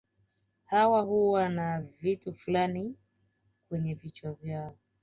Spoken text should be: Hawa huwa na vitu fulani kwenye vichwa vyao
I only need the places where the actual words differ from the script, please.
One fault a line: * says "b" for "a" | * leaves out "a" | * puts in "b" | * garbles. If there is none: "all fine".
all fine